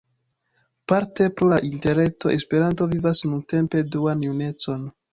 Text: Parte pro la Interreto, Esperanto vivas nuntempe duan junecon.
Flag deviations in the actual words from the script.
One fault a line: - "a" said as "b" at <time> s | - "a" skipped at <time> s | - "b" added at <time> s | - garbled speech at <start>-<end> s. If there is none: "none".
none